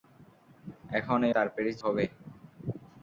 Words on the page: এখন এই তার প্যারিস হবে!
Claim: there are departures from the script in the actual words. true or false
false